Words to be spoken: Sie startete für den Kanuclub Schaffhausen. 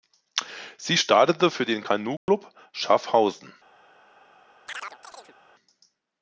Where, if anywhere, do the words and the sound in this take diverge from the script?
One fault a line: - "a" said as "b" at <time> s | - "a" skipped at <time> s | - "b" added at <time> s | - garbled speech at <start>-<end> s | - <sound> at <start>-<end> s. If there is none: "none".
- dropout at 2.2-2.3 s
- chirp at 4.7-5.4 s